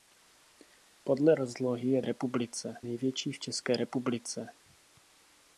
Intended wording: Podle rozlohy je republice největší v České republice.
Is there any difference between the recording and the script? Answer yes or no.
no